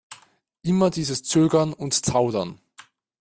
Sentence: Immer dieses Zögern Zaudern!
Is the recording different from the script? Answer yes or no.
yes